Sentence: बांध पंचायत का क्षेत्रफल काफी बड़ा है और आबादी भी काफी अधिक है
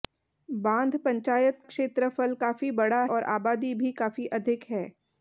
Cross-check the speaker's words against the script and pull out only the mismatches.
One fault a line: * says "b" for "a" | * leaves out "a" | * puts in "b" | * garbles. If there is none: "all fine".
* leaves out "का"
* leaves out "है"